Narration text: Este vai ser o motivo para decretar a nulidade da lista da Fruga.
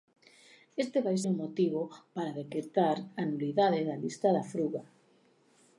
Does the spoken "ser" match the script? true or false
false